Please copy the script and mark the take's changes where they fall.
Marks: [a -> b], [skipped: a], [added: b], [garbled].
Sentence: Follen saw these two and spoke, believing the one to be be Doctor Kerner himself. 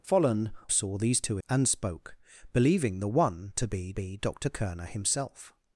Follen saw these two and spoke, believing the one to be be Doctor Kerner himself.